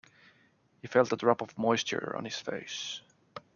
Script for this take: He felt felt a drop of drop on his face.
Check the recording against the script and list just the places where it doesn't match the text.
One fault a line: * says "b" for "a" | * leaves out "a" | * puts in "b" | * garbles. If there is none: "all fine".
* leaves out "felt"
* says "moisture" for "drop"